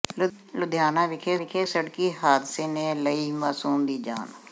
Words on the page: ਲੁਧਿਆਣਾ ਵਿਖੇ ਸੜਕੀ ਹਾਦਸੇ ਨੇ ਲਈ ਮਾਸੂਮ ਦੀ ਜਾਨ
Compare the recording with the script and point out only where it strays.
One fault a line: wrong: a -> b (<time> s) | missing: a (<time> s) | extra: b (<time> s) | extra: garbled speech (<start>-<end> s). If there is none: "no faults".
extra: ਵਿਖੇ (1.4 s)